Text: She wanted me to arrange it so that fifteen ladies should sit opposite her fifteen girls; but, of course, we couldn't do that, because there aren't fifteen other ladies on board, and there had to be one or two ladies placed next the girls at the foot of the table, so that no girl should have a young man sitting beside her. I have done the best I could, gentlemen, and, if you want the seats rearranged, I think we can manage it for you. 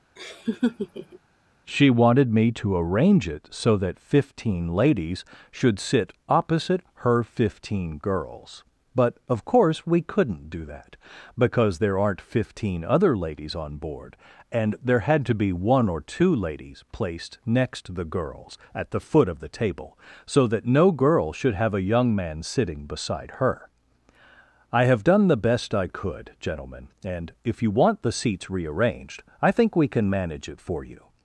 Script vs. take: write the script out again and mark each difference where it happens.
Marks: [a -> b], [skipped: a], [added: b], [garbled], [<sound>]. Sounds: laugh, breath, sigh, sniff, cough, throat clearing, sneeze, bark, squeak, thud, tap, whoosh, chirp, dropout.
[laugh] She wanted me to arrange it so that fifteen ladies should sit opposite her fifteen girls; but, of course, we couldn't do that, because there aren't fifteen other ladies on board, and there had to be one or two ladies placed next [added: to] the girls at the foot of the table, so that no girl should have a young man sitting beside her. I have done the best I could, gentlemen, and, if you want the seats rearranged, I think we can manage it for you.